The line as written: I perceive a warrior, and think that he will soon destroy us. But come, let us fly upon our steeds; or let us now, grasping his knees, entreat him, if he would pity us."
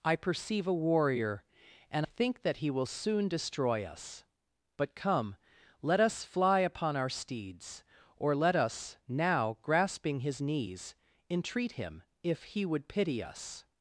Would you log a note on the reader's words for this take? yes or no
no